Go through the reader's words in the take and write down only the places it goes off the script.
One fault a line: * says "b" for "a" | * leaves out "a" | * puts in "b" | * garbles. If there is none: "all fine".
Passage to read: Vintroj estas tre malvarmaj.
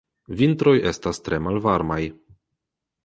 all fine